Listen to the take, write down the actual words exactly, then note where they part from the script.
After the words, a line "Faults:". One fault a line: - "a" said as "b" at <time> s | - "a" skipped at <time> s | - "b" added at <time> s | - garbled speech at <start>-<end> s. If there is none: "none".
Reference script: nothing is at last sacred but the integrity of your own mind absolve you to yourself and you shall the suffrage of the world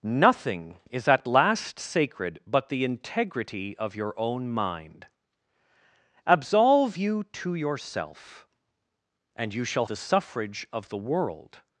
nothing is at last sacred but the integrity of your own mind absolve you to yourself and you shall the suffrage of the world
Faults:
none